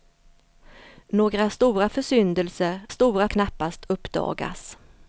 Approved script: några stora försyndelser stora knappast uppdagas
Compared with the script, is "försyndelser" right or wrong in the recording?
right